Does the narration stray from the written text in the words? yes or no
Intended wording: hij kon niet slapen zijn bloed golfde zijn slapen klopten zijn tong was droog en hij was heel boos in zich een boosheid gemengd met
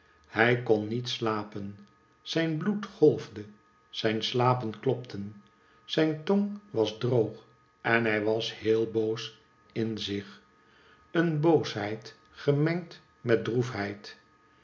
no